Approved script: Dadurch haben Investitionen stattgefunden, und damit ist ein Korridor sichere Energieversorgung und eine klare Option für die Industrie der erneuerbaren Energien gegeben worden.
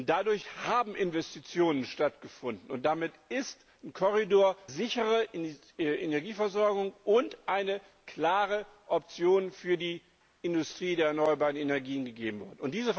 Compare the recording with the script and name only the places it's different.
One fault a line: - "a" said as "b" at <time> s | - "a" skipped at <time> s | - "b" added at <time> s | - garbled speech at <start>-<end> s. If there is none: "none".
none